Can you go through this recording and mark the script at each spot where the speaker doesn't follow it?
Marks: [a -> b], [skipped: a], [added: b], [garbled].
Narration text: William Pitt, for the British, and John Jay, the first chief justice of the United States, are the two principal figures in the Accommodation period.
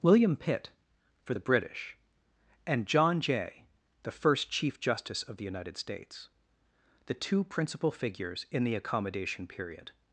William Pitt, for the British, and John Jay, the first chief justice of the United States, [skipped: are] the two principal figures in the Accommodation period.